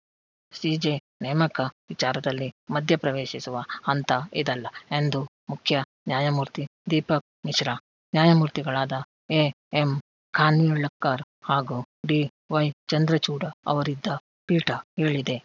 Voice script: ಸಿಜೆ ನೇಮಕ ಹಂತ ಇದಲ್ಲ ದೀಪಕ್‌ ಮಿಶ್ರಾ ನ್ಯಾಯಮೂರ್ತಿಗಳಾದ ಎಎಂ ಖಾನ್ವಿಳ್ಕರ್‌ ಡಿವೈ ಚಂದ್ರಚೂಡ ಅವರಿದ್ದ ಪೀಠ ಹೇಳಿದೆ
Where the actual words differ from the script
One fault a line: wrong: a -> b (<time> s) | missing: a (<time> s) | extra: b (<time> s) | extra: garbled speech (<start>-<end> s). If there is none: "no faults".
extra: ವಿಚಾರದಲ್ಲಿ ಮಧ್ಯಪ್ರವೇಶಿಸುವ (1.9 s)
extra: ಎಂದು ಮುಖ್ಯ ನ್ಯಾಯಮೂರ್ತಿ (4.9 s)
extra: ಹಾಗೂ (11.4 s)